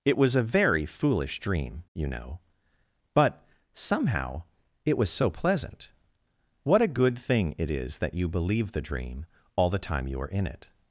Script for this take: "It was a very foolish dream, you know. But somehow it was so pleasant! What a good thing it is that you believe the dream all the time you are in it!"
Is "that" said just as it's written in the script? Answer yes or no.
yes